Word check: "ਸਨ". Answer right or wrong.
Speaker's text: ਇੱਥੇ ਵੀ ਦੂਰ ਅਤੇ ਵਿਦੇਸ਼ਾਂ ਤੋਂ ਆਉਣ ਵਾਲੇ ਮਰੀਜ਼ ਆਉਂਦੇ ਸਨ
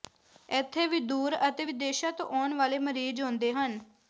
wrong